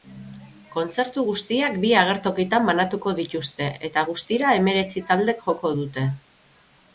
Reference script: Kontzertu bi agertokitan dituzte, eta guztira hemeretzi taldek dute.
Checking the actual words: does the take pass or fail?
fail